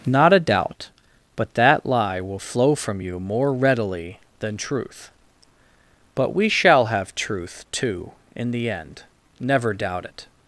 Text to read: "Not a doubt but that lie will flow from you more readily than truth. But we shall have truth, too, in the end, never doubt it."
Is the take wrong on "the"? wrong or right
right